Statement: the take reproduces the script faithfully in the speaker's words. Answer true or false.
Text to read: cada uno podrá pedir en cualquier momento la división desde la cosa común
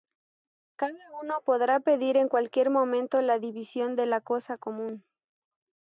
false